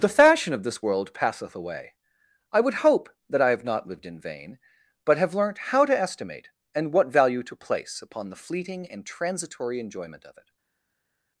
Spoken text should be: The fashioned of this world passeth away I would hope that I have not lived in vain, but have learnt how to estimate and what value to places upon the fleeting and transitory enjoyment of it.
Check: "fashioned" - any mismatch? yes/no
yes